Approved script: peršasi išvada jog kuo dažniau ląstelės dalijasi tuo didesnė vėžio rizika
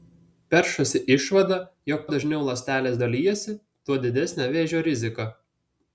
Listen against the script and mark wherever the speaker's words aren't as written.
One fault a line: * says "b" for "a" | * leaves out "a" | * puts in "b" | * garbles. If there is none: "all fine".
* leaves out "kuo"